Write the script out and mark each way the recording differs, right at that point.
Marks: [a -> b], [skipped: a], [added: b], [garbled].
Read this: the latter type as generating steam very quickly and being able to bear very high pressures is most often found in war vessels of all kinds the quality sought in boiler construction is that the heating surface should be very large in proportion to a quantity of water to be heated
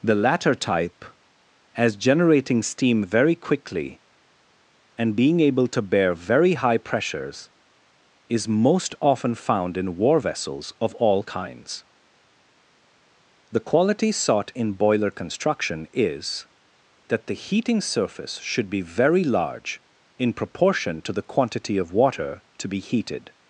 the latter type as generating steam very quickly and being able to bear very high pressures is most often found in war vessels of all kinds the quality sought in boiler construction is that the heating surface should be very large in proportion to [a -> the] quantity of water to be heated